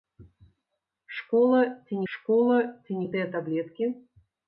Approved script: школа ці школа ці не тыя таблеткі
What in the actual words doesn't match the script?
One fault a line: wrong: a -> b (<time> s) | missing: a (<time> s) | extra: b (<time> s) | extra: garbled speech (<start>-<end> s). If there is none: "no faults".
no faults